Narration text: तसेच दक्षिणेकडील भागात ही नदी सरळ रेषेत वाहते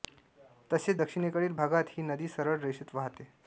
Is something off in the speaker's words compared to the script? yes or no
no